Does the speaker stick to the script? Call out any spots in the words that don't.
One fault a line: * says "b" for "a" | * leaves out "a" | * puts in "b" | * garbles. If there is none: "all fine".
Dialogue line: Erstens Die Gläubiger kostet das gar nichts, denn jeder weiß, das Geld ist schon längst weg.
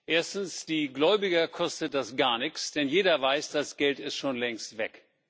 all fine